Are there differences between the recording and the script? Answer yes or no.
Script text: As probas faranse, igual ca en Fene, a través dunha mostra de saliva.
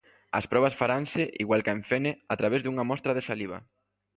no